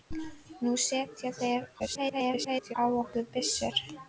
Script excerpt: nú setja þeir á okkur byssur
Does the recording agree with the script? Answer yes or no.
no